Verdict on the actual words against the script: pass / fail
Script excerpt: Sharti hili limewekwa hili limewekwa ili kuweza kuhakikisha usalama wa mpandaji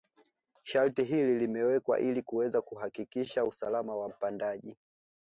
fail